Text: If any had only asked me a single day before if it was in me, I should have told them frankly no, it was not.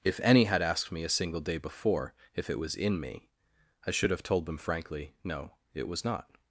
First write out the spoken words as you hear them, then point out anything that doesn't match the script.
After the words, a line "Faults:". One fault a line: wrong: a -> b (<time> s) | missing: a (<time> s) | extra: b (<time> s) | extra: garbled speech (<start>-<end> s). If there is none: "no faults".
If any had asked me a single day before if it was in me, I should have told them frankly no, it was not.
Faults:
missing: only (0.6 s)